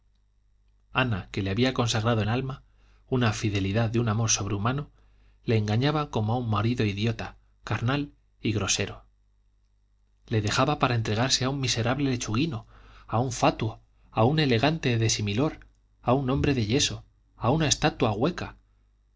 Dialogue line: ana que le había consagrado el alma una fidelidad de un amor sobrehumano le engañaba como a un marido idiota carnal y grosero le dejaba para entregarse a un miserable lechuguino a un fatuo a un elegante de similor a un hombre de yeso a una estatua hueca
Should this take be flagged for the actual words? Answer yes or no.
no